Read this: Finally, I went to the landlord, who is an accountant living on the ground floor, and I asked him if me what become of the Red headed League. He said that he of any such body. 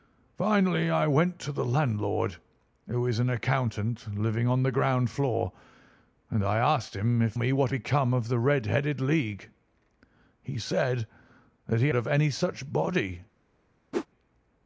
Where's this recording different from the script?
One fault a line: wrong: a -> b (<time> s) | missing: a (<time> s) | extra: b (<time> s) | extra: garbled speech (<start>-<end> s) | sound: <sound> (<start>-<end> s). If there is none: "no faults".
sound: whoosh (13.9-14.1 s)